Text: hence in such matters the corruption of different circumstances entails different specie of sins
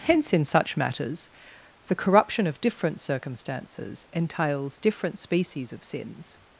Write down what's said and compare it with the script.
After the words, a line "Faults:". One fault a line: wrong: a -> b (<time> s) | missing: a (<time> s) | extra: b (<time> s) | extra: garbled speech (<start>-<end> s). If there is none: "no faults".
hence in such matters the corruption of different circumstances entails different species of sins
Faults:
wrong: specie -> species (5.2 s)